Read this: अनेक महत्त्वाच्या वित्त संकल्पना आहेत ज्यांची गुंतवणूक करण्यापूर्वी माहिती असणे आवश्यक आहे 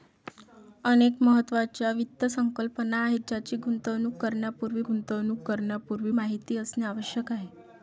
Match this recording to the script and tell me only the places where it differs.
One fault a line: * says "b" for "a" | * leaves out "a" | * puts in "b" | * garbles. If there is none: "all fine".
* puts in "गुंतवणूक करण्यापूर्वी"